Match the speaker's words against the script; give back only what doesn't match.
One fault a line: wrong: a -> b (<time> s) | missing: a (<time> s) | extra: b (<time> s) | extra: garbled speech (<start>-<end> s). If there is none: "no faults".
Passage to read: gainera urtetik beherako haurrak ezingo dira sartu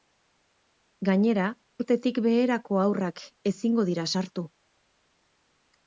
no faults